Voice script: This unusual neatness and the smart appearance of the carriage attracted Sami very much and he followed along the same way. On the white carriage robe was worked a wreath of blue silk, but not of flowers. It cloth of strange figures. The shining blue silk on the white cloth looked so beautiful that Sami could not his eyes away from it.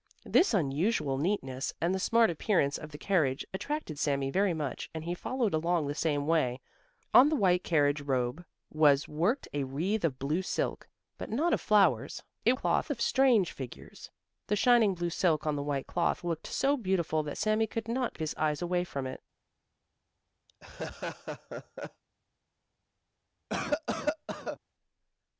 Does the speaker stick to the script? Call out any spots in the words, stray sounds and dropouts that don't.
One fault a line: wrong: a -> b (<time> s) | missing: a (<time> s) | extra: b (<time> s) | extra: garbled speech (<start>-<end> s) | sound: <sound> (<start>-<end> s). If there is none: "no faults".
sound: laugh (20.5-22.0 s)
sound: cough (23.5-24.6 s)